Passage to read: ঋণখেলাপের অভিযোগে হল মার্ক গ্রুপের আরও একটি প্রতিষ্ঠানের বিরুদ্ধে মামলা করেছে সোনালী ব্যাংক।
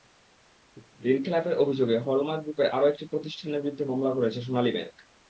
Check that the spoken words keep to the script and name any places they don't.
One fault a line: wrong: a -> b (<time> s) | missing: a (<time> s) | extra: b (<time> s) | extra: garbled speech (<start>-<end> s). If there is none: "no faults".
no faults